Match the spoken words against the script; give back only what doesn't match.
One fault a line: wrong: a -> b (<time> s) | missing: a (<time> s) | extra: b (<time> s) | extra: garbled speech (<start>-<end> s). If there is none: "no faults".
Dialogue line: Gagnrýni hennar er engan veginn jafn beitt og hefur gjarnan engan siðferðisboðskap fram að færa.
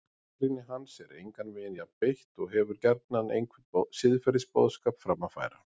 wrong: hennar -> hans (0.7 s)
wrong: engan -> einhvern (3.4 s)